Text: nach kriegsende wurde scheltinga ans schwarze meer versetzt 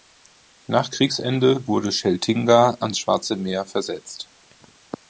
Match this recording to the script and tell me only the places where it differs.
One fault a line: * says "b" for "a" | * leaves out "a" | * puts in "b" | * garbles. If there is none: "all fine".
all fine